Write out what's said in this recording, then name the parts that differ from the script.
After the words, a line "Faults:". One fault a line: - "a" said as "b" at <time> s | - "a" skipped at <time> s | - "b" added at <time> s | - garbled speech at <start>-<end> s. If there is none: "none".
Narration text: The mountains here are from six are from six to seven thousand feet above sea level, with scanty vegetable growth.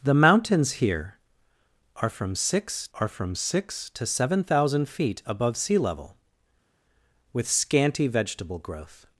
The mountains here are from six are from six to seven thousand feet above sea level, with scanty vegetable growth.
Faults:
none